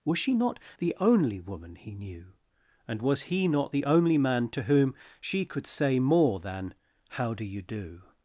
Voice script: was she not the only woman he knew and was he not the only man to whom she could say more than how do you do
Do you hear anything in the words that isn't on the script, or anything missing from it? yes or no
no